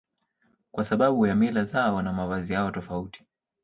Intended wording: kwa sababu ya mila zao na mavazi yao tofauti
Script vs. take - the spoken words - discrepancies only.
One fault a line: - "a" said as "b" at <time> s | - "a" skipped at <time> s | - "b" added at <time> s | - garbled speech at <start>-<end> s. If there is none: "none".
none